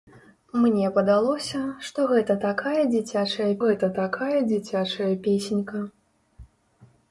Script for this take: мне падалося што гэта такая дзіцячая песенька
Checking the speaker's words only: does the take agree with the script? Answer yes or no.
no